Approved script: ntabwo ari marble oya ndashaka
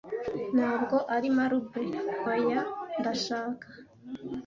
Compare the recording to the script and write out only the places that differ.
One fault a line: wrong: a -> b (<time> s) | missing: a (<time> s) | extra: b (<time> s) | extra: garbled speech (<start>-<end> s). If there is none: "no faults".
no faults